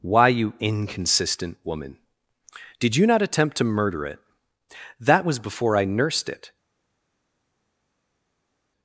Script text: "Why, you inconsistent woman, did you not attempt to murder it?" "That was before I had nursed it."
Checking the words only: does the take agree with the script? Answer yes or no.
no